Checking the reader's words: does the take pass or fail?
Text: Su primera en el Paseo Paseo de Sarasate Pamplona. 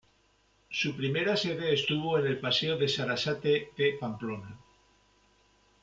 fail